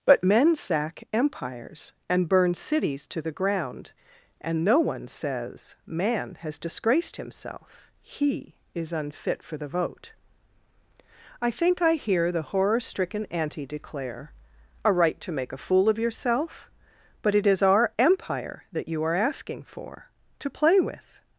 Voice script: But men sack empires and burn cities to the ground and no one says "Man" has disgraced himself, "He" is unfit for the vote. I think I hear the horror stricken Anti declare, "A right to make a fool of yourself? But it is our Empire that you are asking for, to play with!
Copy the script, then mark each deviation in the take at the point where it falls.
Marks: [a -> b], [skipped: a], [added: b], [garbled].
But men sack empires and burn cities to the ground and no one says "Man" has disgraced himself, "He" is unfit for the vote. I think I hear the horror stricken Anti declare, "A right to make a fool of yourself? But it is our Empire that you are asking for, to play with!